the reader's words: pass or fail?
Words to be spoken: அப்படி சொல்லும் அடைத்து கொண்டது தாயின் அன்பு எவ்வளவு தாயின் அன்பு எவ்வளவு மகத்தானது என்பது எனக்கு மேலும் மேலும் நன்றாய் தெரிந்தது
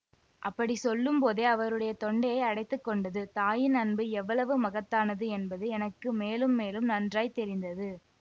fail